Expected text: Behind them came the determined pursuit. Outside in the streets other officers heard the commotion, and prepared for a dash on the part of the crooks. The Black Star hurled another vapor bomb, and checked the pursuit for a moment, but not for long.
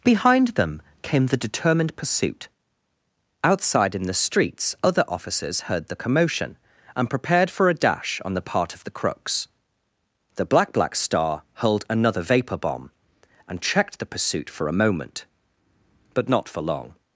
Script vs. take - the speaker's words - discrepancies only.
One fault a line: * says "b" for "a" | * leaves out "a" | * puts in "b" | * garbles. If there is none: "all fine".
* puts in "Black"